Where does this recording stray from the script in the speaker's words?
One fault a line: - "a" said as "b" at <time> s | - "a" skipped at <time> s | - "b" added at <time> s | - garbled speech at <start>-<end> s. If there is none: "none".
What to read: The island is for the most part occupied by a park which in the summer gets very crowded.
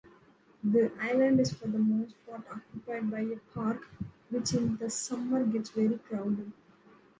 none